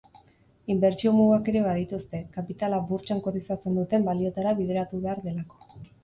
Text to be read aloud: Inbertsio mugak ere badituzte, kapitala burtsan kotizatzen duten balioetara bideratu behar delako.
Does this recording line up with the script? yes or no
yes